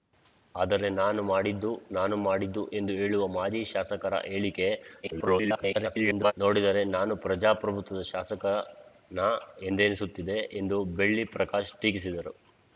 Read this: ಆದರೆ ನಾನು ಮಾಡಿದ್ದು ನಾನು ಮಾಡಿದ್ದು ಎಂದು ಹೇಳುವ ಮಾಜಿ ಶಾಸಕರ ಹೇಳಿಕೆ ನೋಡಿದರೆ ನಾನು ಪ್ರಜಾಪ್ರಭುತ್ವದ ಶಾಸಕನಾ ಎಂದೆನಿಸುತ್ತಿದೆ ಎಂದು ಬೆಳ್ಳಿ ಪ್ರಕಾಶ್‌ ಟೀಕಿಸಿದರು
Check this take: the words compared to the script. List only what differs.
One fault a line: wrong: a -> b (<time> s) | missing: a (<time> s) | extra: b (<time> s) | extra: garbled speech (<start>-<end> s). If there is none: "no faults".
extra: garbled speech (5.0-6.3 s)